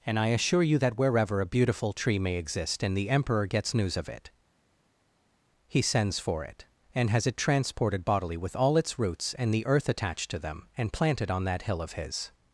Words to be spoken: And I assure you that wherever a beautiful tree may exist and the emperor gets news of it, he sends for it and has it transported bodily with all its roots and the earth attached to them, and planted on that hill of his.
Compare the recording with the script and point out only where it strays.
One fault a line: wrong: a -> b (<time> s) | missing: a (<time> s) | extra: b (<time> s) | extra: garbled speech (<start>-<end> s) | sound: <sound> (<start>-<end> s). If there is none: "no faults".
no faults